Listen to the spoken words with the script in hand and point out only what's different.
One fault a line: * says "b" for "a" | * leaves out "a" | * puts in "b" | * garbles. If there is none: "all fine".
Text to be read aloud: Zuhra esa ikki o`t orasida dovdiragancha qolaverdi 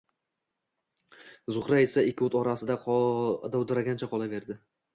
all fine